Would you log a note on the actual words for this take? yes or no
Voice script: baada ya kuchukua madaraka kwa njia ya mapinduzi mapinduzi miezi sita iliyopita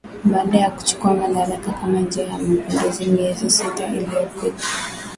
yes